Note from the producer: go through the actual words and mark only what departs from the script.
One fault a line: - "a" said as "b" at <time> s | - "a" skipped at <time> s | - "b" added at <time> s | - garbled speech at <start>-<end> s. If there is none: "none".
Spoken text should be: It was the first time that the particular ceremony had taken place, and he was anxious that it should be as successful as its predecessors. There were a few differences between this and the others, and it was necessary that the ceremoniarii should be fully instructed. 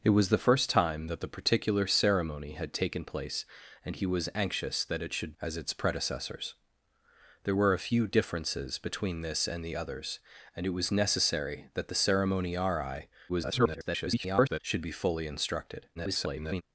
- "be as successful" skipped at 5.3 s
- garbled speech at 13.3-14.6 s
- garbled speech at 15.9-16.6 s